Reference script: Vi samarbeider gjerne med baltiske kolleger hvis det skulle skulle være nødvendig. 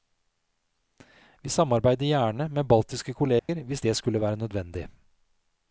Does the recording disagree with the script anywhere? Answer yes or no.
yes